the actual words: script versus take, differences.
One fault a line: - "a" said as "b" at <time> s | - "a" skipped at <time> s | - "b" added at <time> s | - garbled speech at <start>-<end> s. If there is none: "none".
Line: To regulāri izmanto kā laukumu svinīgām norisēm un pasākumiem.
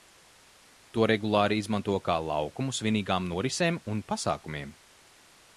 none